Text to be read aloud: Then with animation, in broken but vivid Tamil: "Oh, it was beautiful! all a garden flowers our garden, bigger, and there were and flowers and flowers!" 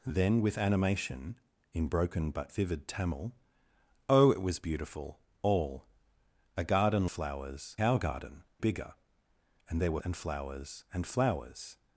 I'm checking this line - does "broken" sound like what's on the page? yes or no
yes